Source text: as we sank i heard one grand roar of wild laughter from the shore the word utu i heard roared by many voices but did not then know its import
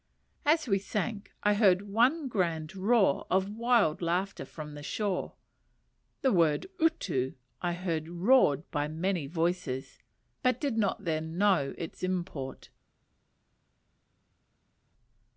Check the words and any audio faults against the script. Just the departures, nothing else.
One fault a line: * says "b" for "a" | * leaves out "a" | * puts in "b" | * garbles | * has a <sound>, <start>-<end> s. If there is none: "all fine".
all fine